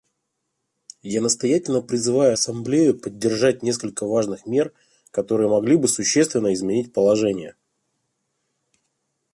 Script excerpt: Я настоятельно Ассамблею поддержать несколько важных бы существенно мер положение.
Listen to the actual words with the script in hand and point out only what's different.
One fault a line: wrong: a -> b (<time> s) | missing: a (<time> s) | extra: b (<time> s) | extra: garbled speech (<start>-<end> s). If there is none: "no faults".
extra: призываю (1.8 s)
extra: мер которые могли (4.5 s)
wrong: мер -> изменить (6.5 s)